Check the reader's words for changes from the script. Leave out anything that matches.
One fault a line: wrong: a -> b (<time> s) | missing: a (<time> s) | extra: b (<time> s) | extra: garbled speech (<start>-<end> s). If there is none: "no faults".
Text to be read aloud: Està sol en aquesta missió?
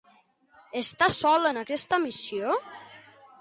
no faults